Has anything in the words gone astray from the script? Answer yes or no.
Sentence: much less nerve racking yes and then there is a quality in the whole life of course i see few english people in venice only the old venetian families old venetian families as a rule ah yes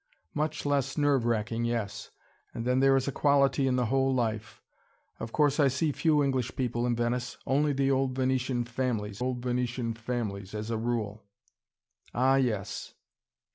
no